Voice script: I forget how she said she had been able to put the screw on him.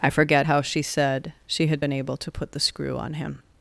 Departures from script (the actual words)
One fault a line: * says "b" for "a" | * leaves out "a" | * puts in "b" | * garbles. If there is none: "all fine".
all fine